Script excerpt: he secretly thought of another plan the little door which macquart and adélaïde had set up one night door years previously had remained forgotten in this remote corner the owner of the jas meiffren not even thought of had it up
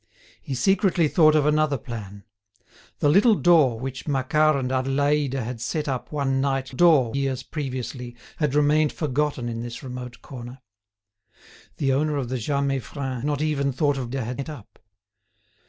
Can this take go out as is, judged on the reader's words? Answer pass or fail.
pass